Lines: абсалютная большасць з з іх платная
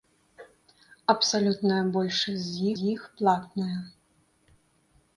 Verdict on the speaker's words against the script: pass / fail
pass